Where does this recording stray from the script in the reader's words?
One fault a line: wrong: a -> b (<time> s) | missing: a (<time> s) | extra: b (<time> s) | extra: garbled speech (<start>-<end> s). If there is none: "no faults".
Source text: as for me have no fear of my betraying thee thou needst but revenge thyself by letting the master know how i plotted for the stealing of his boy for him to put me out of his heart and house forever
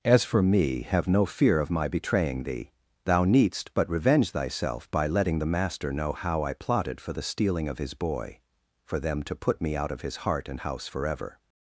wrong: him -> them (9.0 s)